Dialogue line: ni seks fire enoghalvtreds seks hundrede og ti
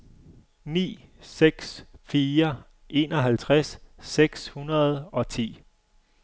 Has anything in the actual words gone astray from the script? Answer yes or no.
no